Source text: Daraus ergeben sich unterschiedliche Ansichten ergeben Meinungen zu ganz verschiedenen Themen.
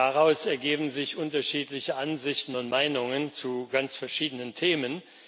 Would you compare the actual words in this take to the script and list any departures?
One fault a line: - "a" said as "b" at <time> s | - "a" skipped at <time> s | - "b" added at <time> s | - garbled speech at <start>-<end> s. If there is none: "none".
- "ergeben" said as "und" at 2.6 s